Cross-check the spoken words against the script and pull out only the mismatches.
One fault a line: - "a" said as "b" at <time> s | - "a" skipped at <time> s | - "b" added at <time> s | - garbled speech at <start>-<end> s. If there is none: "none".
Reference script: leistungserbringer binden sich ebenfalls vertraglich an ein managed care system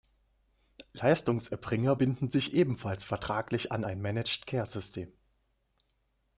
none